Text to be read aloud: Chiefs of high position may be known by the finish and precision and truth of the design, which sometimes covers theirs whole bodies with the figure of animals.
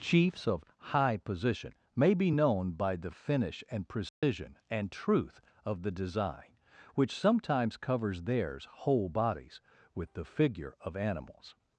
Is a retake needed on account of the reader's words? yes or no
no